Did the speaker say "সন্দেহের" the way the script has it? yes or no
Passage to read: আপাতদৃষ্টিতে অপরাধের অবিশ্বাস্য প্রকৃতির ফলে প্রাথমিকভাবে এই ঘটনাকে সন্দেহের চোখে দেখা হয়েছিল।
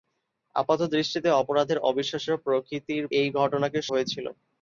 no